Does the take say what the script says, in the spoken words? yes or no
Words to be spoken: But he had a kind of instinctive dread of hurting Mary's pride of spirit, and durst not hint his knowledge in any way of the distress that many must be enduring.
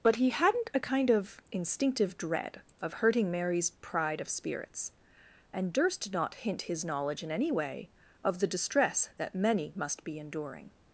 no